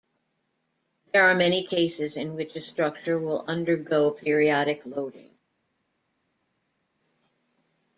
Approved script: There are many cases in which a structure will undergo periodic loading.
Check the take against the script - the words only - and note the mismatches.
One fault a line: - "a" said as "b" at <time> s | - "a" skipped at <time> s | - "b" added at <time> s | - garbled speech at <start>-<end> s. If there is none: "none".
none